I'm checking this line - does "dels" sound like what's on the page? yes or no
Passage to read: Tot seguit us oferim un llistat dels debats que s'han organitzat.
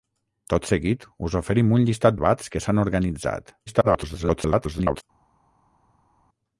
no